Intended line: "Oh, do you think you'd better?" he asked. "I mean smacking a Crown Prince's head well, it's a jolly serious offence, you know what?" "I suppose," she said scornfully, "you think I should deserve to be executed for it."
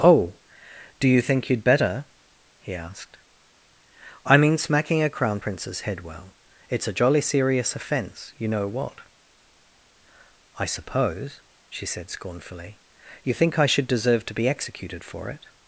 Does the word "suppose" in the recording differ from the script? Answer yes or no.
no